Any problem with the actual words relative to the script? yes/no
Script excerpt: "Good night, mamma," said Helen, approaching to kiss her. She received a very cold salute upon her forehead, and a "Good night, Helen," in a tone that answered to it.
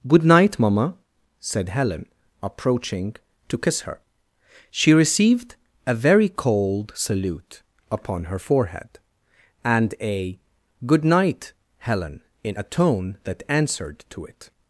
no